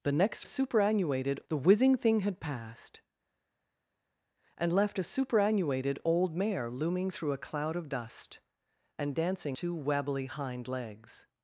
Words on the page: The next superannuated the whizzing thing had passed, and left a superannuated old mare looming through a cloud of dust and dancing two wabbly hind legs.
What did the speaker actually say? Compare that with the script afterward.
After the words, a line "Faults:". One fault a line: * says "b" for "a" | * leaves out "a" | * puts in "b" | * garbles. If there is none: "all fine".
The next superannuated the whizzing thing had passed, and left a superannuated old mare looming through a cloud of dust and dancing two wabbly hind legs.
Faults:
all fine